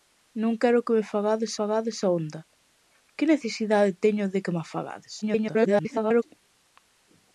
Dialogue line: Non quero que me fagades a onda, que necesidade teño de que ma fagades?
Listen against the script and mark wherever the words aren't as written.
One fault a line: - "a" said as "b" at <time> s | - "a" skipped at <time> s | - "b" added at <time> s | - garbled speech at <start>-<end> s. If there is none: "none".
- "fagades" added at 1.6 s
- garbled speech at 5.2-6.2 s